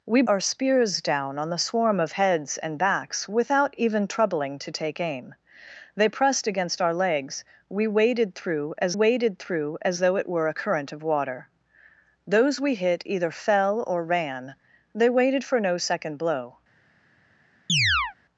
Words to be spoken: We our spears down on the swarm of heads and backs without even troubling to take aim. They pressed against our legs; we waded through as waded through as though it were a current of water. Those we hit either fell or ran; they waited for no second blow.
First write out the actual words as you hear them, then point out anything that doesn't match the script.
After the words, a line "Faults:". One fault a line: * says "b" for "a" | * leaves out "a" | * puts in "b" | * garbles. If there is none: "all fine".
We our spears down on the swarm of heads and backs without even troubling to take aim. They pressed against our legs; we waded through as waded through as though it were a current of water. Those we hit either fell or ran; they waited for no second blow.
Faults:
all fine